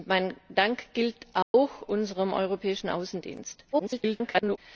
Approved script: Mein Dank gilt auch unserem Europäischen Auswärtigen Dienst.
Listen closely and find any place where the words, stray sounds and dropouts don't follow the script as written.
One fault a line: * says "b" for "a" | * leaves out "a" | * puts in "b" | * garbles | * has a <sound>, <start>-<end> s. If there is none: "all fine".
* has a dropout, 1.4-1.5 s
* garbles